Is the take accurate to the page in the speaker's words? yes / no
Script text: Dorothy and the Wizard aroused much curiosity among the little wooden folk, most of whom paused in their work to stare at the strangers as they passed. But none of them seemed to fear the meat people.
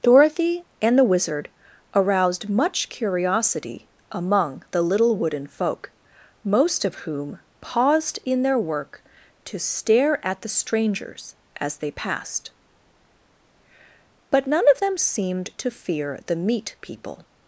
yes